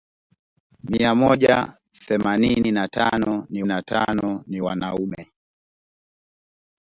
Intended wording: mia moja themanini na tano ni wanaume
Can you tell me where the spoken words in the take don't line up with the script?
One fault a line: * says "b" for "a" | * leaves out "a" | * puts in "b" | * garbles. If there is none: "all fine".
* puts in "na tano ni"